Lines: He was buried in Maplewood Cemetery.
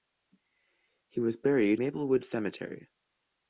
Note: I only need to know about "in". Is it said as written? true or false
false